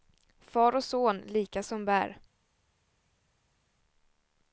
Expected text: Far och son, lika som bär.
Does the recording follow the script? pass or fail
pass